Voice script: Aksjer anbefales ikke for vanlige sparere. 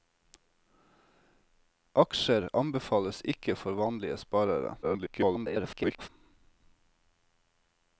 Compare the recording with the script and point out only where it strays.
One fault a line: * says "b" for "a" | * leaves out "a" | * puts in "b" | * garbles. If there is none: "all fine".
* garbles